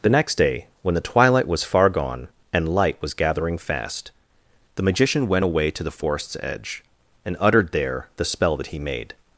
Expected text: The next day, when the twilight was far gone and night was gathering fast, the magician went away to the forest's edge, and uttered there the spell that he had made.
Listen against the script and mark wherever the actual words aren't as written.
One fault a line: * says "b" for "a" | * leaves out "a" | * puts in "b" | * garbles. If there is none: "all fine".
* says "light" for "night"
* leaves out "had"